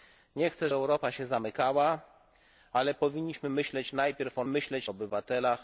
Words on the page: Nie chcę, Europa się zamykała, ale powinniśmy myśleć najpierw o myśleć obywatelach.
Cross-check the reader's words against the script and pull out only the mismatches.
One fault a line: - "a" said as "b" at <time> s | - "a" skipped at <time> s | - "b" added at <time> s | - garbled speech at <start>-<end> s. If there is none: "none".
none